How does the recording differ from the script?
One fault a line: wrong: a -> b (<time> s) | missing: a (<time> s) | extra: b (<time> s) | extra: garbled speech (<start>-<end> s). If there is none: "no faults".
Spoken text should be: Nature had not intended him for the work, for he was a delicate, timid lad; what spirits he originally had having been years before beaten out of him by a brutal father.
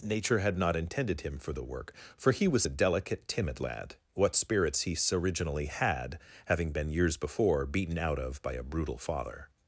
missing: him (8.4 s)